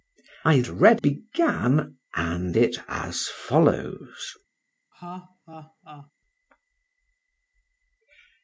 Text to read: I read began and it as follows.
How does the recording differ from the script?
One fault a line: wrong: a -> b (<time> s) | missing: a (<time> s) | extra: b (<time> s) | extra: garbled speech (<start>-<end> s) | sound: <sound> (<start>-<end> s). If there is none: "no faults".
sound: laugh (4.9-6.1 s)